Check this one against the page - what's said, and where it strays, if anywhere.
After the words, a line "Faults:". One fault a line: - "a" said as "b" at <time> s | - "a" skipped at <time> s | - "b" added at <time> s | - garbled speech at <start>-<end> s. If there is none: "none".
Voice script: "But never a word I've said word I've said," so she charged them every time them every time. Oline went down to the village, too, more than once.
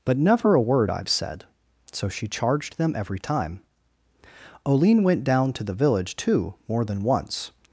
"But never a word I've said," so she charged them every time. Oline went down to the village, too, more than once.
Faults:
- "word I've said" skipped at 1.4 s
- "them every time" skipped at 3.6 s